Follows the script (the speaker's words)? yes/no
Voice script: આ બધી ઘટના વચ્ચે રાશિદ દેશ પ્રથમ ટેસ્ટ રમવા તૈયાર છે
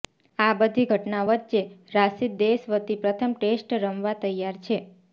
no